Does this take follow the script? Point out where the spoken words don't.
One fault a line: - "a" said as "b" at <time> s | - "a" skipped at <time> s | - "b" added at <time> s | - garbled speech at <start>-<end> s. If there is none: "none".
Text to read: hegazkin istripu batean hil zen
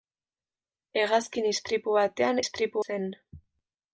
- "hil" said as "istripu" at 2.4 s